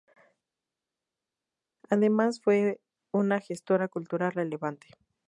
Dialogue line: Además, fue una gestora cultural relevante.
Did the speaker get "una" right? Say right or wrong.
right